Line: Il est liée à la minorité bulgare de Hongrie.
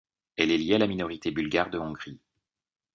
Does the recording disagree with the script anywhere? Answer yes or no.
yes